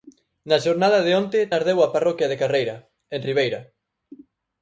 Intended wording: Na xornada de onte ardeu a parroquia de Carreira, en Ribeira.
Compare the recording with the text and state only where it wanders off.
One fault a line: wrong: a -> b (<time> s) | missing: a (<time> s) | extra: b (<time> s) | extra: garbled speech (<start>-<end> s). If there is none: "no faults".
no faults